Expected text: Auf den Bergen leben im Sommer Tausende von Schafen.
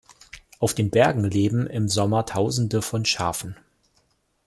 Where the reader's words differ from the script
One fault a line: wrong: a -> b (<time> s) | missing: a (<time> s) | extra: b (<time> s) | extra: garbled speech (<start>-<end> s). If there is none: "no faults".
no faults